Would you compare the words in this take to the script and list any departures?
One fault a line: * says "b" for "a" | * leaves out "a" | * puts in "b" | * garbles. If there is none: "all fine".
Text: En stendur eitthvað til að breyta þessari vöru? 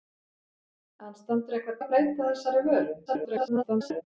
* leaves out "til"
* garbles